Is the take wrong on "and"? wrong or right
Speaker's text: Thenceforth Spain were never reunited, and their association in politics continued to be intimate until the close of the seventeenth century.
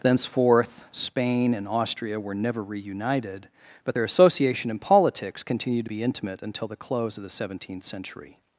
wrong